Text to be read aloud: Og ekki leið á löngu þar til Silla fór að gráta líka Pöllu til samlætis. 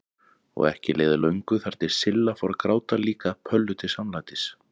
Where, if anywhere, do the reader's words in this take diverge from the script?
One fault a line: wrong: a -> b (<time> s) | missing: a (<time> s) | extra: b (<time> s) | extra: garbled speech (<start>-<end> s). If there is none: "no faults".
no faults